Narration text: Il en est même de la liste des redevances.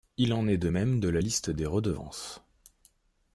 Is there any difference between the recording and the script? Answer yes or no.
yes